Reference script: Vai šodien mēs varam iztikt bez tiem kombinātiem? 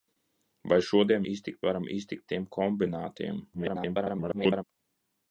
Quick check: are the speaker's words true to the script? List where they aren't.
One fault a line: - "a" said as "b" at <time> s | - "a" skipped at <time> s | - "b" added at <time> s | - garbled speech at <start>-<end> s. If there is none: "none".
- "mēs" said as "iztikt" at 1.3 s
- "bez" skipped at 2.3 s
- garbled speech at 3.5-4.6 s